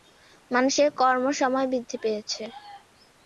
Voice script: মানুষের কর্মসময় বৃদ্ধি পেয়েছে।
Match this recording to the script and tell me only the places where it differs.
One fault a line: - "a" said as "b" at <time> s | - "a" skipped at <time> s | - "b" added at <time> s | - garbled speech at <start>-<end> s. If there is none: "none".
none